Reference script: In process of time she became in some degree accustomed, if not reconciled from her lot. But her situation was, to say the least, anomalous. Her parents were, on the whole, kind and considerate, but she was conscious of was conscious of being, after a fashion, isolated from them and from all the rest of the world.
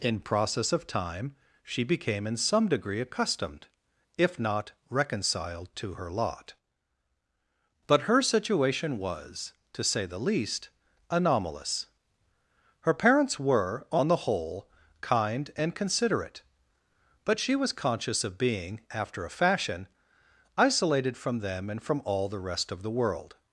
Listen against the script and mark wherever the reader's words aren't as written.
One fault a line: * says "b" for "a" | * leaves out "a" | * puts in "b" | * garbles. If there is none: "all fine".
* says "to" for "from"
* leaves out "was conscious of"